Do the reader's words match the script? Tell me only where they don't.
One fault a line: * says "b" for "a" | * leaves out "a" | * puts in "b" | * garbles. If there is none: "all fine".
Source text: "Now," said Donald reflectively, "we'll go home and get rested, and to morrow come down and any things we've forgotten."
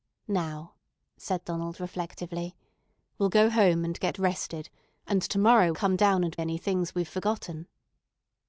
all fine